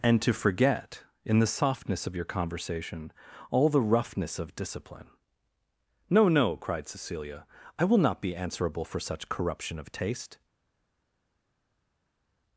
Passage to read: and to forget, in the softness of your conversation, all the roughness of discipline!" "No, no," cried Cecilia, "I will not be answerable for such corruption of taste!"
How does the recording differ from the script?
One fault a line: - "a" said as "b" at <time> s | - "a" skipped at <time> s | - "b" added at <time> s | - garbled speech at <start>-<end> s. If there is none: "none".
none